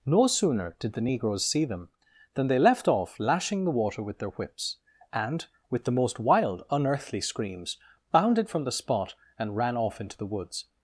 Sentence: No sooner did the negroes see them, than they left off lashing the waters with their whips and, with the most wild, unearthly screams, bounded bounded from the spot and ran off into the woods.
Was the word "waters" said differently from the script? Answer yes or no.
yes